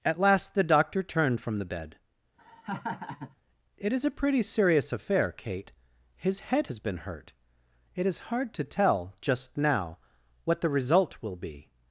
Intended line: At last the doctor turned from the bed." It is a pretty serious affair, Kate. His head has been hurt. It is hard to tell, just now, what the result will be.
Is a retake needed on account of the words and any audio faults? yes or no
yes